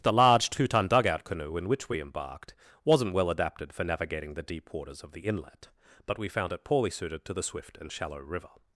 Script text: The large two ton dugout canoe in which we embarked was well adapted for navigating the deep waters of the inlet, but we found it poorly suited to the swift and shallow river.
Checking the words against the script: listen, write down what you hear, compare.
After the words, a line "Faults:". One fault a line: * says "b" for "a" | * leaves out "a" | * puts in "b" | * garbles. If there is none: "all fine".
The large two ton dugout canoe in which we embarked wasn't well adapted for navigating the deep waters of the inlet, but we found it poorly suited to the swift and shallow river.
Faults:
* says "wasn't" for "was"